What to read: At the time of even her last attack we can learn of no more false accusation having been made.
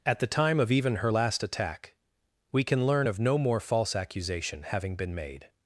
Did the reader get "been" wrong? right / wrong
right